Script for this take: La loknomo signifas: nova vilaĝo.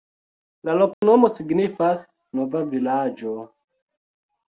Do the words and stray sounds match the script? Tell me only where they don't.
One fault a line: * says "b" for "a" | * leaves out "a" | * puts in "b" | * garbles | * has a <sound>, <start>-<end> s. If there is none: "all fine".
* has a dropout, 0.9-1.0 s